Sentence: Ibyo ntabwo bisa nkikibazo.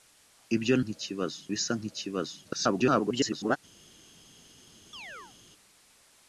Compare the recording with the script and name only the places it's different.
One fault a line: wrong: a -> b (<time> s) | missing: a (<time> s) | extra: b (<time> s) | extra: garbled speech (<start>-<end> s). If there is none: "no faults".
wrong: ntabwo -> nkikibazo (0.8 s)
extra: garbled speech (2.4-3.6 s)